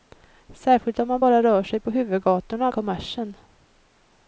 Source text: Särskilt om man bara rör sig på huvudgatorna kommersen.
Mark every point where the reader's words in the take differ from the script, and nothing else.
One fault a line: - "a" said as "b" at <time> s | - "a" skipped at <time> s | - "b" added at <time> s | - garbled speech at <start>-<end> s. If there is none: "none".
none